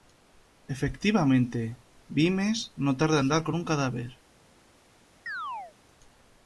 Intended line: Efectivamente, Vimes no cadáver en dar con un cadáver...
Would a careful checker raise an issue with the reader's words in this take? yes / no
yes